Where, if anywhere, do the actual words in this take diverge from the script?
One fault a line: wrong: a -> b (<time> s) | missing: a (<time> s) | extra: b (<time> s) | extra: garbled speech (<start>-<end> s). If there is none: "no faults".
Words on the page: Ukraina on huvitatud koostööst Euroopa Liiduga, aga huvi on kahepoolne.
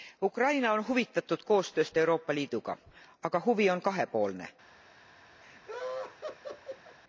no faults